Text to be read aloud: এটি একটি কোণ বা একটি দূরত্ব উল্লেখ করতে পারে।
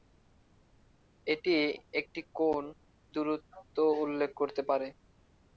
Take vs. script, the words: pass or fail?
fail